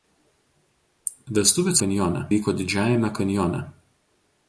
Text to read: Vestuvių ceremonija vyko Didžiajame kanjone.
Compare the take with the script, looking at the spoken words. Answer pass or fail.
fail